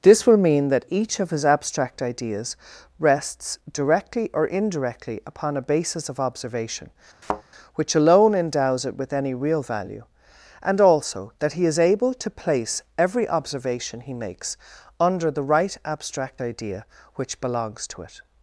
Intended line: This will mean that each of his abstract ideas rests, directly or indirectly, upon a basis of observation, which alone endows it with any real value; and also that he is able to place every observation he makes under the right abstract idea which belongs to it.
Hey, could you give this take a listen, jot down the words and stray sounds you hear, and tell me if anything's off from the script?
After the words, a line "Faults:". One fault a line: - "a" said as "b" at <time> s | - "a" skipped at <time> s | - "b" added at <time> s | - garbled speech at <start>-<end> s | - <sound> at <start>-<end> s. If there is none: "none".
This will mean that each of his abstract ideas rests, directly or indirectly, upon a basis of observation, which alone endows it with any real value; and also that he is able to place every observation he makes under the right abstract idea which belongs to it.
Faults:
- thud at 7.2-7.4 s